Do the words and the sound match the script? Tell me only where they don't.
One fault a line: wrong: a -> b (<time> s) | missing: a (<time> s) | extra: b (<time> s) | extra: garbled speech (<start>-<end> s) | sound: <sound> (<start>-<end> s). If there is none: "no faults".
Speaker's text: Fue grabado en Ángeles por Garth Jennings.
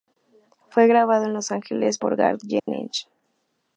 extra: Los (1.3 s)
sound: dropout (2.6-2.7 s)